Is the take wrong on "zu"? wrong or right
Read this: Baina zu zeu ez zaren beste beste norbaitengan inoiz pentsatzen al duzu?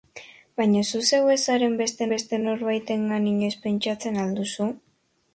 right